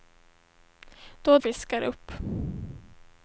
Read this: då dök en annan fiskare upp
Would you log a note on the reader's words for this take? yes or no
yes